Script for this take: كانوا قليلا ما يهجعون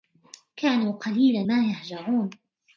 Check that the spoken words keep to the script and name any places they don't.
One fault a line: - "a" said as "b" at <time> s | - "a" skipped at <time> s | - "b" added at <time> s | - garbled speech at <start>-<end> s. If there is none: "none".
none